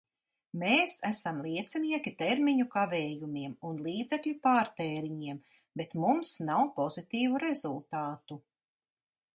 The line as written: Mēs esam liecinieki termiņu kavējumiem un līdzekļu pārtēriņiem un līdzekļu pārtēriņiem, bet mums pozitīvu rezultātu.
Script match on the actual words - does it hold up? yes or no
no